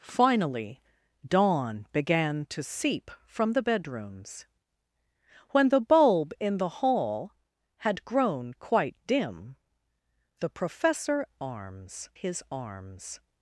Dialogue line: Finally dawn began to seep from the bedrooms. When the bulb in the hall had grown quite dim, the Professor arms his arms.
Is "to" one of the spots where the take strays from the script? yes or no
no